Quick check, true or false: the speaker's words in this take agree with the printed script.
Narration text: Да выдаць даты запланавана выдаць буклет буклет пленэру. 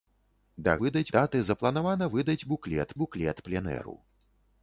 true